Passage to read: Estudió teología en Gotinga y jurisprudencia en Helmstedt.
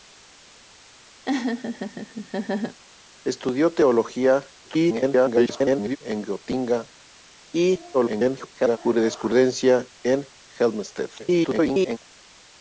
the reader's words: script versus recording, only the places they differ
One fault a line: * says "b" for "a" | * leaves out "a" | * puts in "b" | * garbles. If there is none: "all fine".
* garbles
* garbles
* garbles